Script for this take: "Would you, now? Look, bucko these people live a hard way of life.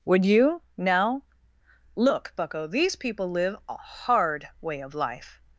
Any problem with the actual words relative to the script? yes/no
no